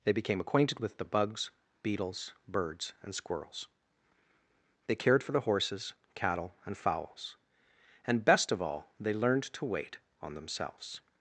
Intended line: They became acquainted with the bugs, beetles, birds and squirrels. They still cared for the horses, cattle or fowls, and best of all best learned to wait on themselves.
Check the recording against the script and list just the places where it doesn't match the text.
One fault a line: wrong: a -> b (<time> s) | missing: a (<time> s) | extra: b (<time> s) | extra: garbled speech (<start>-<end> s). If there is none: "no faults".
missing: still (4.9 s)
wrong: or -> and (6.6 s)
wrong: best -> they (9.0 s)